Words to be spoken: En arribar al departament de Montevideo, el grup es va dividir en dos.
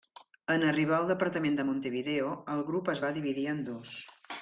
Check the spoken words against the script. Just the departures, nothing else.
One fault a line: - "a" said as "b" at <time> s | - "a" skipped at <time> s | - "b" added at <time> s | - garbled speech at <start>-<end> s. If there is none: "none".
none